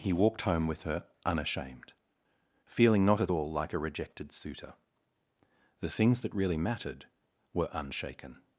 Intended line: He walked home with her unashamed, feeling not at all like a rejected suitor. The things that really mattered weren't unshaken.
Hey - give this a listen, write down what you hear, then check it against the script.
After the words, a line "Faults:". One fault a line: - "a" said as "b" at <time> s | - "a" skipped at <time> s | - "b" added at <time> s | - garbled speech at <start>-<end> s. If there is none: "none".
He walked home with her unashamed, feeling not at all like a rejected suitor. The things that really mattered were unshaken.
Faults:
- "weren't" said as "were" at 7.5 s